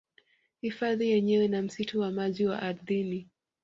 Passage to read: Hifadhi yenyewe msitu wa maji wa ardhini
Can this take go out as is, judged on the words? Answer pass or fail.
fail